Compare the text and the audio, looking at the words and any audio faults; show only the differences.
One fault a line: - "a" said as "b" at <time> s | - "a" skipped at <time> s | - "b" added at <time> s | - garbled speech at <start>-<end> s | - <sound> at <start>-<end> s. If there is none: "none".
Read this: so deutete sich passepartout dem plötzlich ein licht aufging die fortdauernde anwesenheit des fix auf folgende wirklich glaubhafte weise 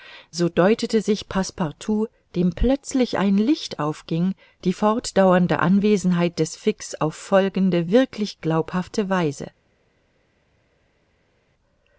none